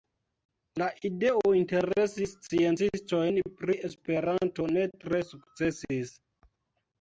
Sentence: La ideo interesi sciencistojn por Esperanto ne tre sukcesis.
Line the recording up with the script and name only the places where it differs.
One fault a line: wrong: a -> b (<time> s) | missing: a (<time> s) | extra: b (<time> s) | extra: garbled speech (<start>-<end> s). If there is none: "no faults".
wrong: por -> pri (3.6 s)